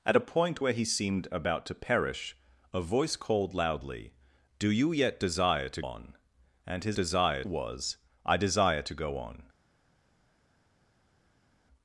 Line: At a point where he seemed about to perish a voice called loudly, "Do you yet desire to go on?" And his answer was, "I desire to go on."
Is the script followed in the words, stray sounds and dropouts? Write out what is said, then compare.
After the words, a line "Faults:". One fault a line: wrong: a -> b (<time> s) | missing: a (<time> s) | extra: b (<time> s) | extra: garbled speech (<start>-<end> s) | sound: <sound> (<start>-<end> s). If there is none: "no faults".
At a point where he seemed about to perish a voice called loudly, "Do you yet desire to on?" And his desire was, "I desire to go on."
Faults:
missing: go (5.8 s)
wrong: answer -> desire (6.9 s)